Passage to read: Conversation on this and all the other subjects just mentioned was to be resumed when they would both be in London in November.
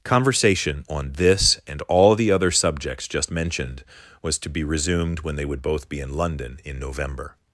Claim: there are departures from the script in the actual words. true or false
false